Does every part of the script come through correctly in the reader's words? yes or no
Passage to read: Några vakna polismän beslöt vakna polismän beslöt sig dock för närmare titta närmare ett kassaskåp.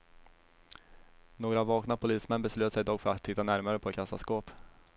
no